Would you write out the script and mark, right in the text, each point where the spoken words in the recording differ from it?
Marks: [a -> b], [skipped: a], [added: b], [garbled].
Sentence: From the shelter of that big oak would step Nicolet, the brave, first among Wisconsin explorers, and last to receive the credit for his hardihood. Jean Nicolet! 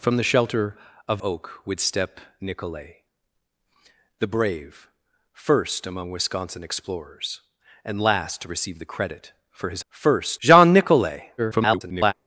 From the shelter of [skipped: that big] oak would step Nicolet, the brave, first among Wisconsin explorers, and last to receive the credit for his [hardihood. -> first] Jean Nicolet! [garbled]